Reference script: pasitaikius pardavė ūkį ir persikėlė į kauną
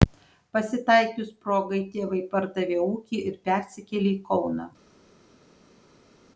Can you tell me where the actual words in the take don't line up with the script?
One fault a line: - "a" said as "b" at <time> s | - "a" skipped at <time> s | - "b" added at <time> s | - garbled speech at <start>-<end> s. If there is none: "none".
- "progai tėvai" added at 1.5 s